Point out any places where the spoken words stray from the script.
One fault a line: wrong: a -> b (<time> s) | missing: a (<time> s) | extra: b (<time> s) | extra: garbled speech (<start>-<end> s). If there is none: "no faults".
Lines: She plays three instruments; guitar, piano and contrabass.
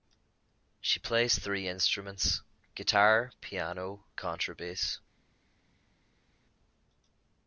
missing: and (4.1 s)